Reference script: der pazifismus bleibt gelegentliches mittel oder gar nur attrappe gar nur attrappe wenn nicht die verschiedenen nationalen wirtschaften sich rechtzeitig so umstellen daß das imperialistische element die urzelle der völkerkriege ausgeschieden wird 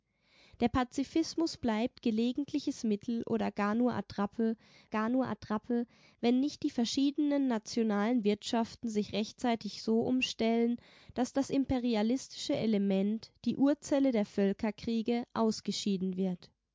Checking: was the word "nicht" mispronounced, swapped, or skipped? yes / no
no